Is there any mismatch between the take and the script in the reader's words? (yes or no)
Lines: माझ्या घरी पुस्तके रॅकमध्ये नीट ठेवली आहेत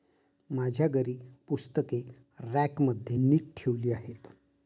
no